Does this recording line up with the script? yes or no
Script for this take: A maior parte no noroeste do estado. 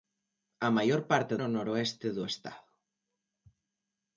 yes